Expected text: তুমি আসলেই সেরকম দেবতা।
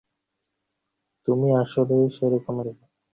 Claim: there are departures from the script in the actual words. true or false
false